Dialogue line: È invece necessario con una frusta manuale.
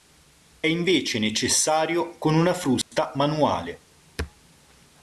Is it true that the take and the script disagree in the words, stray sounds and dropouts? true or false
true